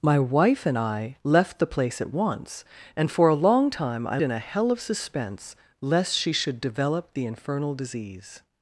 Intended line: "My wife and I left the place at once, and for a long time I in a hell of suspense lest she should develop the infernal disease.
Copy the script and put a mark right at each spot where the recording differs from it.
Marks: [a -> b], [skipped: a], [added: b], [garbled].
"My wife and I left the place at once, and for a long time I in a hell of suspense lest she should develop the infernal disease.